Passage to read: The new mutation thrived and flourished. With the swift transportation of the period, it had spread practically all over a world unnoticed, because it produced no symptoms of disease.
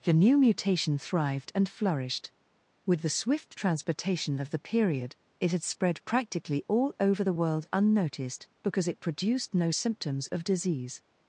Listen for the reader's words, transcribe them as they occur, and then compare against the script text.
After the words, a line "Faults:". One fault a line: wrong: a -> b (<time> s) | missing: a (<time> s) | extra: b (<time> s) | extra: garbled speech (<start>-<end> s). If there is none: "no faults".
The new mutation thrived and flourished. With the swift transportation of the period, it had spread practically all over the world unnoticed, because it produced no symptoms of disease.
Faults:
wrong: a -> the (7.2 s)